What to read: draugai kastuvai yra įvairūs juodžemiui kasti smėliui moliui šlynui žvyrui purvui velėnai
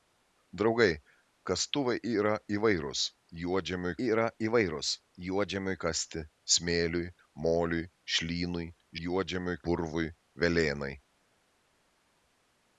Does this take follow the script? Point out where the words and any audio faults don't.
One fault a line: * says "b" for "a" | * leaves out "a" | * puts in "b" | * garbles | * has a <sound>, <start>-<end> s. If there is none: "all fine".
* puts in "yra įvairūs juodžemiui"
* says "juodžemiui" for "žvyrui"